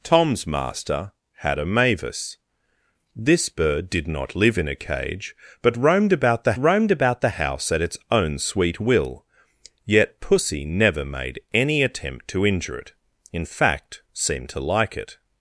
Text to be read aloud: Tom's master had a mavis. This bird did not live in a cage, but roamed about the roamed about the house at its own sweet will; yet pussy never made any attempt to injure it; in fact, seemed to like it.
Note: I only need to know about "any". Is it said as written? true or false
true